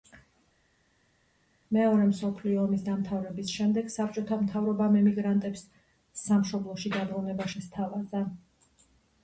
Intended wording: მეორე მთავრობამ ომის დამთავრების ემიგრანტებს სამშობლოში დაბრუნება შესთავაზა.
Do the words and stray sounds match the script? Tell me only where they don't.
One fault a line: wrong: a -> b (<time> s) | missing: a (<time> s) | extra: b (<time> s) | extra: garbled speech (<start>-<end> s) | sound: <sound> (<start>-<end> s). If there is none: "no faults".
wrong: მთავრობამ -> მსოფლიო (2.1 s)
extra: შემდეგ საბჭოთა მთავრობამ (3.6 s)